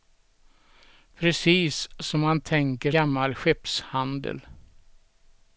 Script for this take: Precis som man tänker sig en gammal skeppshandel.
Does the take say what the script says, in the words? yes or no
no